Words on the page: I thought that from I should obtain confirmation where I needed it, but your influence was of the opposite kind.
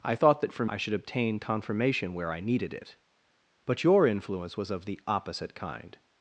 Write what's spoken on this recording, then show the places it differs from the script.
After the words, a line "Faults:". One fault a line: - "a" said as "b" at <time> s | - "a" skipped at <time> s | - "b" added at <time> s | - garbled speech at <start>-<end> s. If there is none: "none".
I thought that from I should obtain confirmation where I needed it, but your influence was of the opposite kind.
Faults:
none